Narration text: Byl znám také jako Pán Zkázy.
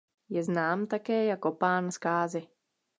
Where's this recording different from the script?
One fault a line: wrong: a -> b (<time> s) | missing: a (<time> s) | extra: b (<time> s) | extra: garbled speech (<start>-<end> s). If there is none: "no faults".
wrong: Byl -> Je (0.3 s)